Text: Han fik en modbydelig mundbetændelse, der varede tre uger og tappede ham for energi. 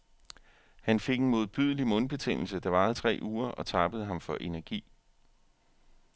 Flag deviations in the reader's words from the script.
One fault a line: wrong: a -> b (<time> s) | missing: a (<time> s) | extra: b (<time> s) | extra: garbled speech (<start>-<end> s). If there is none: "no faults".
no faults